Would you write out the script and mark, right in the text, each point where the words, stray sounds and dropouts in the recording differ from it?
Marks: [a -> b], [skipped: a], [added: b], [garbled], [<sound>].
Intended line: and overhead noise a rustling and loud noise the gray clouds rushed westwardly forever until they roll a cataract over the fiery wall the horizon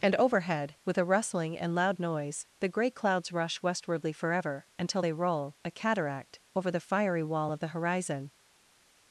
and overhead [noise -> with] a rustling and loud noise the gray clouds [rushed -> rush] westwardly forever until they roll a cataract over the fiery wall [added: of] the horizon